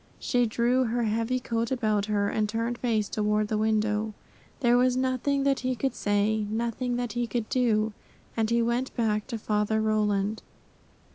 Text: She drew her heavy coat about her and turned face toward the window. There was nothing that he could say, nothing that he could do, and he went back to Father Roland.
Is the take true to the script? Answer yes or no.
yes